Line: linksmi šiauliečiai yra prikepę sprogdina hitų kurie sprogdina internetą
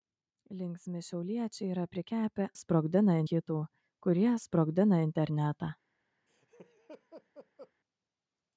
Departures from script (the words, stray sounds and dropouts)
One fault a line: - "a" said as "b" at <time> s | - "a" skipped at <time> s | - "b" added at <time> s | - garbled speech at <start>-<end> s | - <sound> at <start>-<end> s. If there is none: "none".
- laugh at 6.3-7.7 s